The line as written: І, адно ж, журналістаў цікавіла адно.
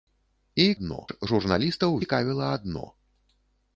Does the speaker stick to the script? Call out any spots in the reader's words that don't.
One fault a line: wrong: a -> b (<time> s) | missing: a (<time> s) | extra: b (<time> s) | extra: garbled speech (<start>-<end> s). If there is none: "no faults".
no faults